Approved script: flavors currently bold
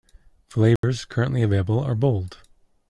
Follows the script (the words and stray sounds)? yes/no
no